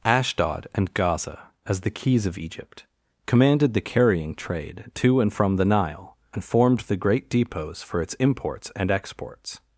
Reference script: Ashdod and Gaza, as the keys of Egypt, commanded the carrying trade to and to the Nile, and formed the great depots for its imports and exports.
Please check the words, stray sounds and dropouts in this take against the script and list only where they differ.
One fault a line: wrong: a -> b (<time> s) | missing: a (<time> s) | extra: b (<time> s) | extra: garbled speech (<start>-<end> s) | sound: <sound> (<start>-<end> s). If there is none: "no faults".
wrong: to -> from (5.3 s)